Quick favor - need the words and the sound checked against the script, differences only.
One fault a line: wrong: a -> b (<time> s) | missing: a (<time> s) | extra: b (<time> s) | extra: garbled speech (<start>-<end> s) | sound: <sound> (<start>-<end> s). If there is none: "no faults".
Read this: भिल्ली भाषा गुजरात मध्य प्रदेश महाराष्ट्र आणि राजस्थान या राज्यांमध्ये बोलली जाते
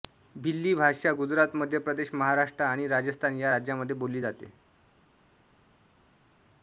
no faults